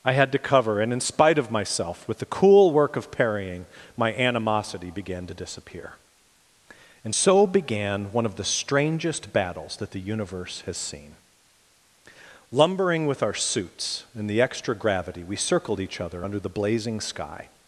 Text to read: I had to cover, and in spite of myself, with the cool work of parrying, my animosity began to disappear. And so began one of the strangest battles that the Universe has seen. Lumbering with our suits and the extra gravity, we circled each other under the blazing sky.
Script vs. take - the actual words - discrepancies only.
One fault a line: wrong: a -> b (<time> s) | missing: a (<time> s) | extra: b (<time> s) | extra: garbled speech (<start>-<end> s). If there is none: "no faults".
no faults